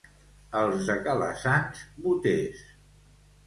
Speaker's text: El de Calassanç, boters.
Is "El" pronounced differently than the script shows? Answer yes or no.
yes